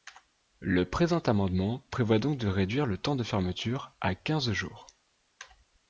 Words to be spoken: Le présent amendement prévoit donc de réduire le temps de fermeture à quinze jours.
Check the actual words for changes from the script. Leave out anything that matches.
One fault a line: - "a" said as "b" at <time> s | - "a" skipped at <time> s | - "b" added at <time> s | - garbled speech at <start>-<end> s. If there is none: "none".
none